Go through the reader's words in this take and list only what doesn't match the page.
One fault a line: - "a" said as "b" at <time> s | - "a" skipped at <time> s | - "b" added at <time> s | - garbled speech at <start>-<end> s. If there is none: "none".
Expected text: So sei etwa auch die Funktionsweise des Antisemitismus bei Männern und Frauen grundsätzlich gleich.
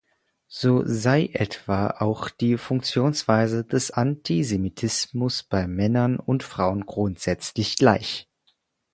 none